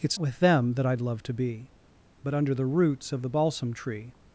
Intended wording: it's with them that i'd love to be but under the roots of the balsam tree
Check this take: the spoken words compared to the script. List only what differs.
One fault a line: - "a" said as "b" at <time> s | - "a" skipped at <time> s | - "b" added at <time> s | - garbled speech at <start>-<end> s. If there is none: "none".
none